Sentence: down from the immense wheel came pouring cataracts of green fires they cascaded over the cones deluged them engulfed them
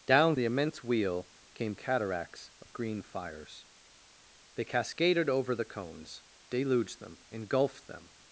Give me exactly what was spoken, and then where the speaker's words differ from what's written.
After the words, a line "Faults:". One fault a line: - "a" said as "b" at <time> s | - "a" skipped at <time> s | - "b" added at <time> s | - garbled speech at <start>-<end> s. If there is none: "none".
down the immense wheel came cataracts of green fires they cascaded over the cones deluged them engulfed them
Faults:
- "from" skipped at 0.3 s
- "pouring" skipped at 1.7 s